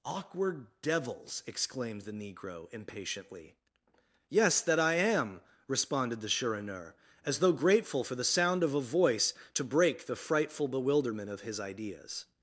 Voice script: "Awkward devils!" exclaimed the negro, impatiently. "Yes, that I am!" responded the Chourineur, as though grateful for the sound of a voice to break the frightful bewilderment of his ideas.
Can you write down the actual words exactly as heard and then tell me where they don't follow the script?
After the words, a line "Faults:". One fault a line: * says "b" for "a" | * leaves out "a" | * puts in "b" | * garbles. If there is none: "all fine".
"Awkward devils!" exclaimed the negro, impatiently. "Yes, that I am!" responded the Chourineur, as though grateful for the sound of a voice to break the frightful bewilderment of his ideas.
Faults:
all fine